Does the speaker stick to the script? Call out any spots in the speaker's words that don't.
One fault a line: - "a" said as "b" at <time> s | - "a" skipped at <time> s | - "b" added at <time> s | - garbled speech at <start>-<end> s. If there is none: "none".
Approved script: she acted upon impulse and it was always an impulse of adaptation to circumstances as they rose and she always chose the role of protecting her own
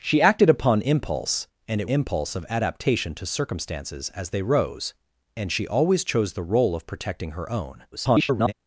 - "was always an" skipped at 1.9 s
- garbled speech at 7.9-8.5 s